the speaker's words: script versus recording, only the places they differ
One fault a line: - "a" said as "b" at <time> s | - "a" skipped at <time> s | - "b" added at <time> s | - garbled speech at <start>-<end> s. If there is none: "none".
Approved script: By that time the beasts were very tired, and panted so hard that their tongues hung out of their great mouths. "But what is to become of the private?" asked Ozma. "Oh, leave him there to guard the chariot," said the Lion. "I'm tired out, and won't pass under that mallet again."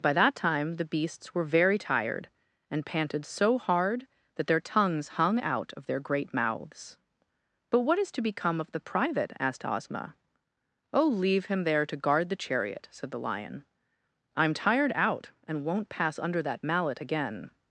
none